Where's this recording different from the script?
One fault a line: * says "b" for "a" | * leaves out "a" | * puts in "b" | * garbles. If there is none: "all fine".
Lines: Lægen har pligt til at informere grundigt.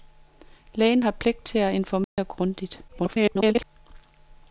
* garbles